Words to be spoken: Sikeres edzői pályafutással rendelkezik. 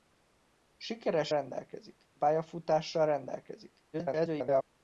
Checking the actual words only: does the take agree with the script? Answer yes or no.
no